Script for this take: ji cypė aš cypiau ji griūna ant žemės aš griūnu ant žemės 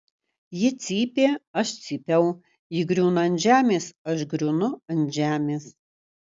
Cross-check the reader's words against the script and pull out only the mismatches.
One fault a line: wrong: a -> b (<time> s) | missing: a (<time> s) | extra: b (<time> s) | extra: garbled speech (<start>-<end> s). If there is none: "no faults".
no faults